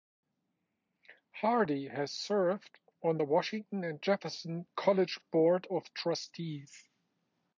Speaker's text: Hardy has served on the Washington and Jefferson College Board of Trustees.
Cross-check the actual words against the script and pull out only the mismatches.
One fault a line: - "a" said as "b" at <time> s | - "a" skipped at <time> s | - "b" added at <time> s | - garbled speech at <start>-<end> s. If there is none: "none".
none